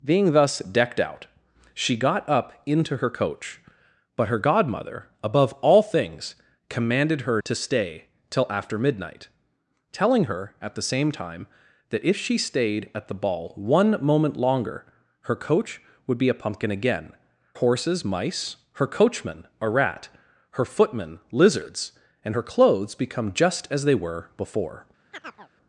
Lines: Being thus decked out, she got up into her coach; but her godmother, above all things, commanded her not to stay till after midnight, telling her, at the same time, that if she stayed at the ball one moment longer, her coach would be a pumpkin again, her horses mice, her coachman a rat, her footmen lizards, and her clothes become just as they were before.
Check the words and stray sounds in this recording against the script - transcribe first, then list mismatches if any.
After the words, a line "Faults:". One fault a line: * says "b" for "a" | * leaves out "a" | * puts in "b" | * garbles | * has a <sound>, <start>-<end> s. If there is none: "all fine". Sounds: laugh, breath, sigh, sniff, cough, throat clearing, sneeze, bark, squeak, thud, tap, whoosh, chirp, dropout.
Being thus decked out, she got up into her coach; but her godmother, above all things, commanded her to stay till after midnight, telling her, at the same time, that if she stayed at the ball one moment longer, her coach would be a pumpkin again, horses mice, her coachman a rat, her footmen lizards, and her clothes become just as they were before.
Faults:
* leaves out "not"
* leaves out "her"
* has a chirp, 25.1-25.5 s